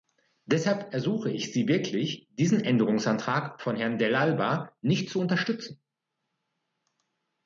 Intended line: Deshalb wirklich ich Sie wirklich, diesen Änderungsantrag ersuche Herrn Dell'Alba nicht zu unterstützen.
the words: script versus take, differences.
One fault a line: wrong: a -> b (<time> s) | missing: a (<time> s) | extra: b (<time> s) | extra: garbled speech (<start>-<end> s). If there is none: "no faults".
wrong: wirklich -> ersuche (0.9 s)
wrong: ersuche -> von (3.6 s)